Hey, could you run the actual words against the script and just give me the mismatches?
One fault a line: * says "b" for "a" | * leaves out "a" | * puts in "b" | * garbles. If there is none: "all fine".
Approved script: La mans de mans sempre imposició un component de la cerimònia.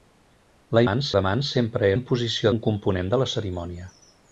all fine